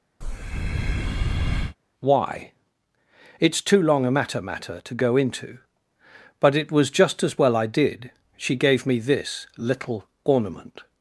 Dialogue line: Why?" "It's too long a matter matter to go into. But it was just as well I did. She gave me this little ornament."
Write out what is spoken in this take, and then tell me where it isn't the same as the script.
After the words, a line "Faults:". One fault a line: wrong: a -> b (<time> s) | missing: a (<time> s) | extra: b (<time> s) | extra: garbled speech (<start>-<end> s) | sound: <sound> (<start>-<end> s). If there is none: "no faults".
Why?" "It's too long a matter matter to go into. But it was just as well I did. She gave me this little ornament."
Faults:
sound: breath (0.2-1.8 s)